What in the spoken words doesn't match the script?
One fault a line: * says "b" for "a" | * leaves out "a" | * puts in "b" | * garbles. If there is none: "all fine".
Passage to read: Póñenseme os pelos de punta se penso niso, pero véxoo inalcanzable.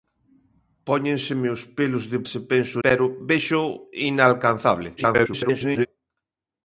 * leaves out "punta"
* leaves out "niso"
* garbles